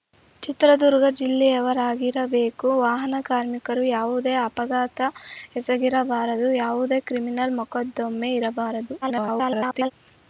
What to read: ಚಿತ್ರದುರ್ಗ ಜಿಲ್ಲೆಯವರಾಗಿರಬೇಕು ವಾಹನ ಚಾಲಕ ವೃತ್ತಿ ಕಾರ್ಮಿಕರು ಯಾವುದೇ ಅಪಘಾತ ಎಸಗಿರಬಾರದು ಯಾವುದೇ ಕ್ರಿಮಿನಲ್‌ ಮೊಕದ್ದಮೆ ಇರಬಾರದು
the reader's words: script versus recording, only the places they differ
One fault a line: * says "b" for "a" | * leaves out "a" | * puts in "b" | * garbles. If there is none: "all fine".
* leaves out "ಚಾಲಕ ವೃತ್ತಿ"
* garbles